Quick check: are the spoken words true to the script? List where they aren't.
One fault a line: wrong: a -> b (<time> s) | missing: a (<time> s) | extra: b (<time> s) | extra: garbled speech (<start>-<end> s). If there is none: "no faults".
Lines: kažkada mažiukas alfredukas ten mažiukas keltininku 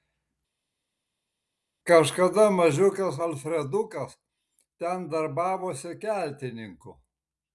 wrong: mažiukas -> darbavosi (5.1 s)